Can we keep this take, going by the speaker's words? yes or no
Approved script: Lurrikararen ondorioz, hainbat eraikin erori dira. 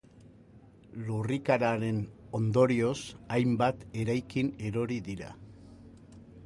yes